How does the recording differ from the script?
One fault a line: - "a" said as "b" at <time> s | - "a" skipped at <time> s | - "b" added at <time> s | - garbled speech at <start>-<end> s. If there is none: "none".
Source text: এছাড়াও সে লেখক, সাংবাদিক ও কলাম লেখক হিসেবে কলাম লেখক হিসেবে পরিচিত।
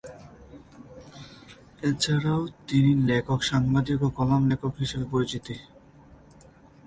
- "সে" said as "তিনি" at 2.7 s
- "কলাম লেখক হিসেবে" skipped at 5.1 s